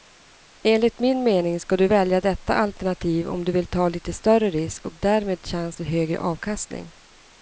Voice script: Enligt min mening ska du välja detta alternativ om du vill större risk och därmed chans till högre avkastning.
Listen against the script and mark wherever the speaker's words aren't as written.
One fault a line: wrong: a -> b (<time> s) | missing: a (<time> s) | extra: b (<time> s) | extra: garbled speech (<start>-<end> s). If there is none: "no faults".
extra: ta lite (3.7 s)